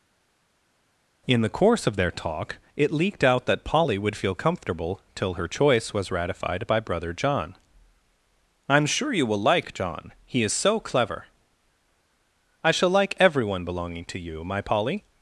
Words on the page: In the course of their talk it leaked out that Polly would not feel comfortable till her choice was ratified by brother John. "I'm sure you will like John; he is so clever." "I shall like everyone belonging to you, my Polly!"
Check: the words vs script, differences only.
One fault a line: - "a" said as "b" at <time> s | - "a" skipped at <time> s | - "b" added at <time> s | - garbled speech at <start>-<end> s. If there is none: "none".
- "not" skipped at 4.2 s